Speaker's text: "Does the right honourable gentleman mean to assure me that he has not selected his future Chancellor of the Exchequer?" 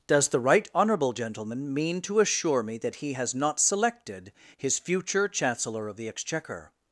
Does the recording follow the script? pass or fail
pass